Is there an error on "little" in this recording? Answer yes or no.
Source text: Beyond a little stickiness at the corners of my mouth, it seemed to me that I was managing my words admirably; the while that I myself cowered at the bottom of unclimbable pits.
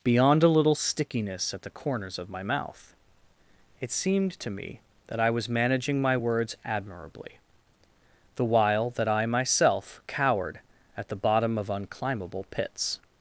no